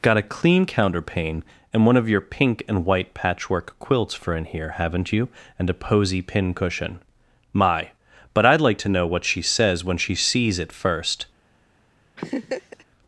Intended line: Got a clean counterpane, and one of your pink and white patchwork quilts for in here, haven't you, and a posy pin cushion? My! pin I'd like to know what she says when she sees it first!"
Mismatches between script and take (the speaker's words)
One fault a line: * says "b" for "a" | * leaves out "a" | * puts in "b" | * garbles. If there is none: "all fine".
* says "but" for "pin"